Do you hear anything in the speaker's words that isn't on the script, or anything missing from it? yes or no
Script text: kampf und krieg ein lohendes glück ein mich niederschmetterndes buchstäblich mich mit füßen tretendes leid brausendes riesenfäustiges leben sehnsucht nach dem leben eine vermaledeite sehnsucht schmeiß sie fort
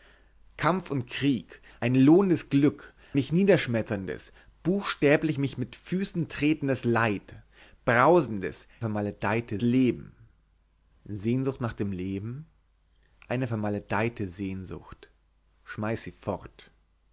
yes